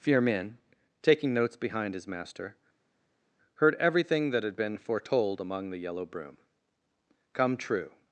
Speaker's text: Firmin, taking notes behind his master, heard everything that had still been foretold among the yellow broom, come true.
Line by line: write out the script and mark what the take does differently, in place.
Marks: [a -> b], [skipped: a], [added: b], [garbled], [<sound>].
Firmin, taking notes behind his master, heard everything that had [skipped: still] been foretold among the yellow broom, come true.